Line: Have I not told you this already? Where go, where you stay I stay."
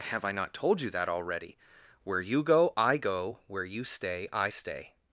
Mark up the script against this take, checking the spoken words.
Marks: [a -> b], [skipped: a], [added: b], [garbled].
Have I not told you [this -> that] already? Where [added: you go I] go, where you stay I stay."